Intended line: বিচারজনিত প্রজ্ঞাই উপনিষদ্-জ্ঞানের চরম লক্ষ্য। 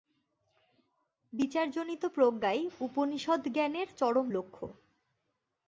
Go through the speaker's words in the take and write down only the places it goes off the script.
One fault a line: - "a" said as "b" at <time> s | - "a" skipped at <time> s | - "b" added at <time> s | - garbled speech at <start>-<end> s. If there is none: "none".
none